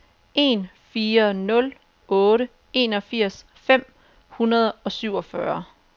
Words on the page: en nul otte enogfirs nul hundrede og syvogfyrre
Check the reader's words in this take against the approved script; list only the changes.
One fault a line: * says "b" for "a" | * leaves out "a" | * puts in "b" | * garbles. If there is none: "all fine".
* puts in "fire"
* says "fem" for "nul"